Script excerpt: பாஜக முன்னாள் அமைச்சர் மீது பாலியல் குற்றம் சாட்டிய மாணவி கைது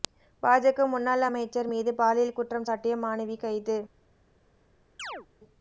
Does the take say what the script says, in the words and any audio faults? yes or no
no